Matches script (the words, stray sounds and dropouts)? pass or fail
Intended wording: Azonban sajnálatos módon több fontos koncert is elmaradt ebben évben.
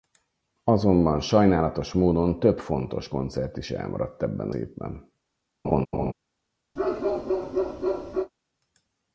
fail